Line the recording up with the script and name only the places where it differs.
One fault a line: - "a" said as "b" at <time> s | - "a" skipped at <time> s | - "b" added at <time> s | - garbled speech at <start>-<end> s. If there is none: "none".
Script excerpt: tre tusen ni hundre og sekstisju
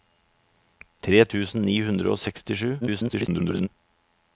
- garbled speech at 2.8-3.7 s